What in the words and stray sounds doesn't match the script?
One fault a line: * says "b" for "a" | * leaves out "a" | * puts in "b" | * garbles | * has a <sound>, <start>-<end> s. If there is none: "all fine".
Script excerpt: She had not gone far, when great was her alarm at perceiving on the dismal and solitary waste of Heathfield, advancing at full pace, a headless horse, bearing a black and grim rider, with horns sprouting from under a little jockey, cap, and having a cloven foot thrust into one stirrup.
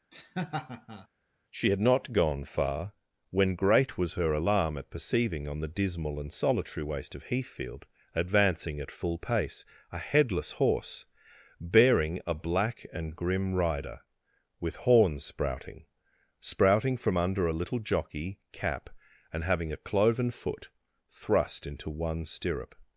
* has a laugh, 0.1-1.1 s
* puts in "sprouting"